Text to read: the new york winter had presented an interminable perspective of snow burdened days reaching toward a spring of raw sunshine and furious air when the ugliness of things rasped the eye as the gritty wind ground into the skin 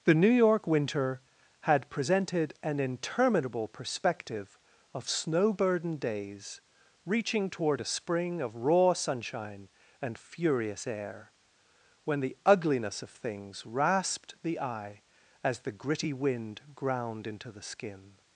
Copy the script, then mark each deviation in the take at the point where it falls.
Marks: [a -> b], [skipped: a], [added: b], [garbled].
the new york winter had presented an interminable perspective of snow burdened days reaching toward a spring of raw sunshine and furious air when the ugliness of things rasped the eye as the gritty wind ground into the skin